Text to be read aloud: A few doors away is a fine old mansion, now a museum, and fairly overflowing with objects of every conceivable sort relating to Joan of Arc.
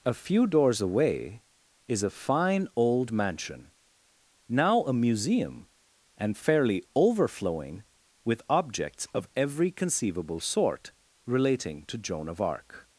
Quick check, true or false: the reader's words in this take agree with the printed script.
true